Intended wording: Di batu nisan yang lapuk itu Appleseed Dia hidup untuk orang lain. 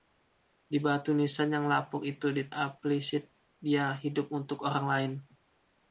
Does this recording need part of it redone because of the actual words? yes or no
no